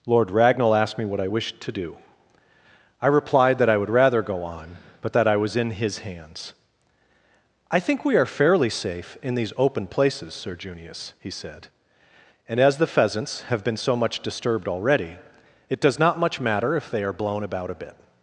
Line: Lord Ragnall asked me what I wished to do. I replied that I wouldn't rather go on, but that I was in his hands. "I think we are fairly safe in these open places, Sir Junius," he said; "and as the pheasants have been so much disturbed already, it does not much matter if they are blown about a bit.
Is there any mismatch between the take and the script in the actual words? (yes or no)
yes